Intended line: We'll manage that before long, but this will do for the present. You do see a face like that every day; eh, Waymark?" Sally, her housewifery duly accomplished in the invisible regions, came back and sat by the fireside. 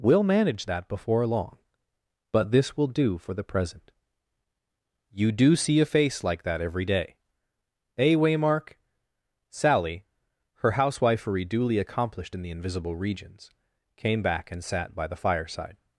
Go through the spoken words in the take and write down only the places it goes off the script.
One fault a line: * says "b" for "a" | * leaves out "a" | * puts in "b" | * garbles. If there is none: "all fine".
all fine